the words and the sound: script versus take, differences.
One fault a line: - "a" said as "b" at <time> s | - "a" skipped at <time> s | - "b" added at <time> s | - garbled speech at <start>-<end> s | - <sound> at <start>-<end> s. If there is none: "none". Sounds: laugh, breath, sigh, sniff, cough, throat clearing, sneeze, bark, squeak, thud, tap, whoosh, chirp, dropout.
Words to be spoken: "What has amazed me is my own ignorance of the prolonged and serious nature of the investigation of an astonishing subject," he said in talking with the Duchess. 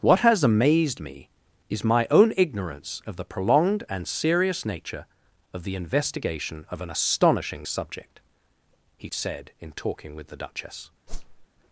- whoosh at 11.1-11.5 s